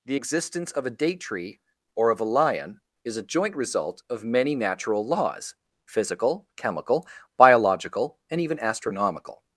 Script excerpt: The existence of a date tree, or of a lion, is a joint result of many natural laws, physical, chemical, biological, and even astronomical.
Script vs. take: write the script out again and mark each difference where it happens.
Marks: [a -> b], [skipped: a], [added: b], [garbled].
The existence of a date tree, or of a lion, is a joint result of many natural laws, physical, chemical, biological, and even astronomical.